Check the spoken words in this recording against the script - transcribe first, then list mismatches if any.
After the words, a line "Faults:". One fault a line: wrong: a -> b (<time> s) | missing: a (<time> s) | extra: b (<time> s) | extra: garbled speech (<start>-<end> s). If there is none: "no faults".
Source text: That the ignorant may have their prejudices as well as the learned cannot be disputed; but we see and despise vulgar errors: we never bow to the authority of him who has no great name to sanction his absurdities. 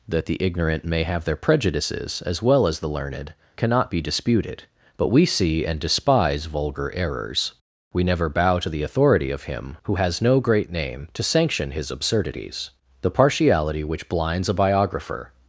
That the ignorant may have their prejudices as well as the learned cannot be disputed; but we see and despise vulgar errors: we never bow to the authority of him who has no great name to sanction his absurdities. The partiality which blinds a biographer
Faults:
extra: The partiality which blinds a biographer (13.0 s)